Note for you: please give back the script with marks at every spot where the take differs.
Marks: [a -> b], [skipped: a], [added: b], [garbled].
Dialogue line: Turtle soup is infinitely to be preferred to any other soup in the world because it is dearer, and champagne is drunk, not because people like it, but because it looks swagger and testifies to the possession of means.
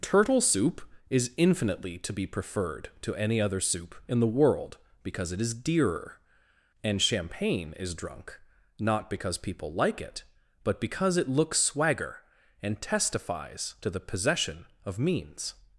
Turtle soup is infinitely to be preferred to any other soup in the world because it is dearer, and champagne is drunk, not because people like it, but because it looks swagger and testifies to the possession of means.